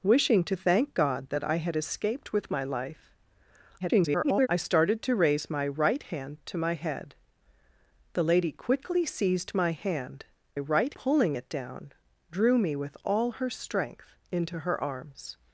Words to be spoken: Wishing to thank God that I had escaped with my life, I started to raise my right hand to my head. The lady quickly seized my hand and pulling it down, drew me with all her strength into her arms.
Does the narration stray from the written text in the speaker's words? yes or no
yes